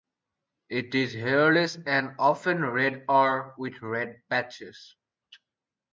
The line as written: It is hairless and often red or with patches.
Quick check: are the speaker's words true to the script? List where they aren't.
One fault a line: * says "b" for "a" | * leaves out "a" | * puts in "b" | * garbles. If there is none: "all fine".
* puts in "red"